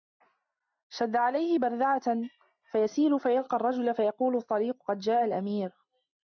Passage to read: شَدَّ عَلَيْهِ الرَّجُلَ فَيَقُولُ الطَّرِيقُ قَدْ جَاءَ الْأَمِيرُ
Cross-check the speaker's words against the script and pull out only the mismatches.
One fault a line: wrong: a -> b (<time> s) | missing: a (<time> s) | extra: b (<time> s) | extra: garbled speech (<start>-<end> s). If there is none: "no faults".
extra: بَرْذَعَةً فَيَسِيرُ فَيَلْقَى (1.6 s)